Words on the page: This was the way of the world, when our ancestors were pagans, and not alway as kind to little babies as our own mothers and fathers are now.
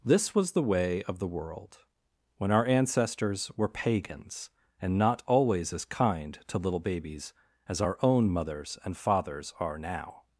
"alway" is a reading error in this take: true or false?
true